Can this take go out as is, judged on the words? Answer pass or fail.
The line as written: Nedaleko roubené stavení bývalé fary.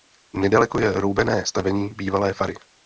fail